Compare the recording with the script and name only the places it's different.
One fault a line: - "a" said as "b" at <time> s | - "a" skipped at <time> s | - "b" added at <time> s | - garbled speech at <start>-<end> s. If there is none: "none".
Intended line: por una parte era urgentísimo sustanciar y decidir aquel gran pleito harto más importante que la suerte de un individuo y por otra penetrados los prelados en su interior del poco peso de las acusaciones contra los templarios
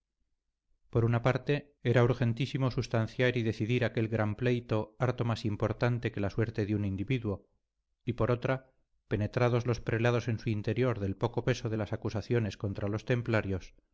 none